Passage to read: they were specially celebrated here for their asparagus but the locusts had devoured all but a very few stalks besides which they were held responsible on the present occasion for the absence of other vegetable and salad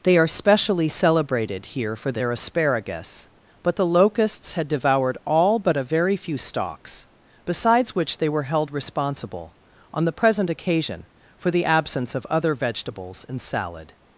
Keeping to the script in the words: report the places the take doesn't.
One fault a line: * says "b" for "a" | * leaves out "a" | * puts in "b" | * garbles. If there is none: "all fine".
* says "are" for "were"
* says "vegetables" for "vegetable"